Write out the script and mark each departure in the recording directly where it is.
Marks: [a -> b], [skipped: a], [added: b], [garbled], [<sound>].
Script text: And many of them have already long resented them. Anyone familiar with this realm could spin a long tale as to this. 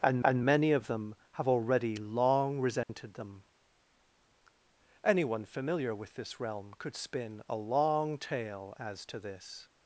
And [added: and] many of them have already long resented [dropout] them. Anyone familiar with this realm could spin a long tale as to this.